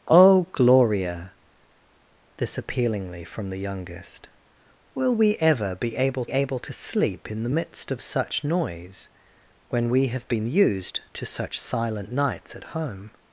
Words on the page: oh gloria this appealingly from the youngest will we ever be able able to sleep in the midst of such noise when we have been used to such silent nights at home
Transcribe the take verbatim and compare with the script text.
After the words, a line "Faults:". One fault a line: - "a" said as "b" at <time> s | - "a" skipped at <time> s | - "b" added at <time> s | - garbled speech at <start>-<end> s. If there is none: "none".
oh gloria this appealingly from the youngest will we ever be able able to sleep in the midst of such noise when we have been used to such silent nights at home
Faults:
none